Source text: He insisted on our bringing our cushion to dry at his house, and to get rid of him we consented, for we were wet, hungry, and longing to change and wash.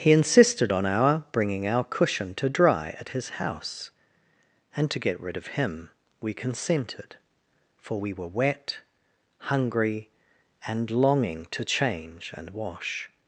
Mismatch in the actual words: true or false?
false